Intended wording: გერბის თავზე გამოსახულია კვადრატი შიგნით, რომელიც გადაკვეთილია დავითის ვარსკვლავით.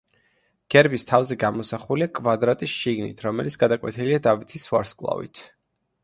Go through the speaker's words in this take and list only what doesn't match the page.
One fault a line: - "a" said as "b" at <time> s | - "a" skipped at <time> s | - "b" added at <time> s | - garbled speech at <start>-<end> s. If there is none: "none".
none